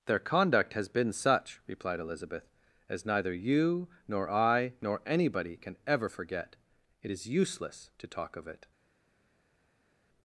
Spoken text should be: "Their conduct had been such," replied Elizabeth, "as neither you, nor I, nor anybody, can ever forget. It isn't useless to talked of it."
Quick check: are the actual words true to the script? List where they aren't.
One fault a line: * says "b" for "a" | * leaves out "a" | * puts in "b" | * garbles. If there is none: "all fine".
* says "has" for "had"
* says "is" for "isn't"
* says "talk" for "talked"